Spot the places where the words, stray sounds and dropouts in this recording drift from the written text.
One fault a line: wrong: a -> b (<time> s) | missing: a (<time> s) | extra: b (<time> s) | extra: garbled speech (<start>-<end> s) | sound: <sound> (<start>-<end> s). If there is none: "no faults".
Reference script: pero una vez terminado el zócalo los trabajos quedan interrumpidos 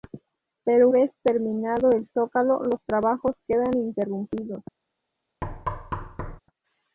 missing: una (0.9 s)
sound: thud (5.4-6.4 s)